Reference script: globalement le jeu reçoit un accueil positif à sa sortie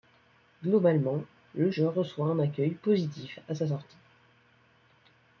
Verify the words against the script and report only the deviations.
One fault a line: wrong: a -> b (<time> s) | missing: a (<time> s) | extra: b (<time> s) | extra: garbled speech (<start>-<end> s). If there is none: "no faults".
no faults